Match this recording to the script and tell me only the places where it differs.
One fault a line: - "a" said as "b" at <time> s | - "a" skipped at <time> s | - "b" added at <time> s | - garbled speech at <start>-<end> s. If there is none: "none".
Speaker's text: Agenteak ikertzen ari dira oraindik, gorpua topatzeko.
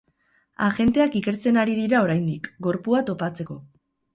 none